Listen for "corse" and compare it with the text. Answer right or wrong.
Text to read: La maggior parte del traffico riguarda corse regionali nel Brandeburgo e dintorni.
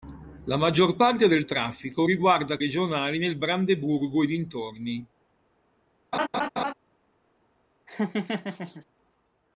wrong